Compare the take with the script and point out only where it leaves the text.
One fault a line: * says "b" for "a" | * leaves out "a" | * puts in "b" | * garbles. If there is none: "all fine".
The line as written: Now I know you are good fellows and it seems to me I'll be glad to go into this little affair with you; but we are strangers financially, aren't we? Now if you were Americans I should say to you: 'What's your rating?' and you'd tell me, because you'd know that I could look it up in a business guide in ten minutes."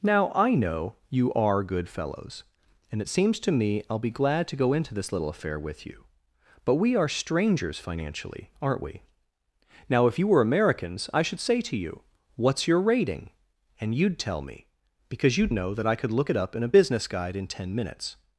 all fine